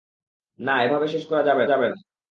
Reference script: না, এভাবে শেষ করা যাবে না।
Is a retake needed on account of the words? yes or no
yes